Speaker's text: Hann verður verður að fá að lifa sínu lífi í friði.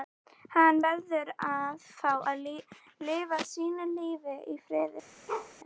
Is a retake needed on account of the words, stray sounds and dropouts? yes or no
yes